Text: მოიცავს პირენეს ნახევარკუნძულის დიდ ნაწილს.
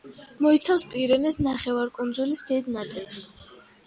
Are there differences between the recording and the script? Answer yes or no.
no